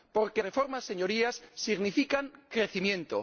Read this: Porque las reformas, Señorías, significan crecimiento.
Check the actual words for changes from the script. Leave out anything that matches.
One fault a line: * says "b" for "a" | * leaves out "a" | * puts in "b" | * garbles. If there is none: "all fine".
* leaves out "las"